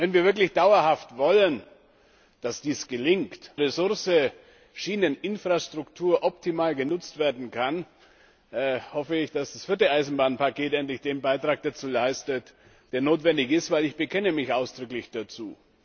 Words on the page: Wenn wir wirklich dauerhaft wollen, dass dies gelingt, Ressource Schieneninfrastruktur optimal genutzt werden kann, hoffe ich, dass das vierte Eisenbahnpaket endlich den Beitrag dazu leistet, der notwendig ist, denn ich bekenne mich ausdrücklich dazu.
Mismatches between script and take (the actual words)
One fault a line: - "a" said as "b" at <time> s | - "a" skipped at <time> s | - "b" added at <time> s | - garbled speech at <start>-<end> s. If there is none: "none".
none